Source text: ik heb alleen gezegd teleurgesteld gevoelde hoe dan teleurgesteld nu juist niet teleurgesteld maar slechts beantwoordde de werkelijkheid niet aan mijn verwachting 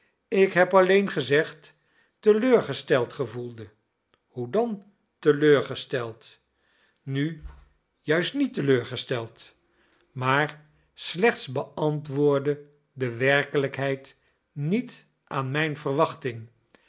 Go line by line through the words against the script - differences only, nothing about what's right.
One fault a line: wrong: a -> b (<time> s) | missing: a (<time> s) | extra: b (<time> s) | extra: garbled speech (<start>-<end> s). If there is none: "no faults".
no faults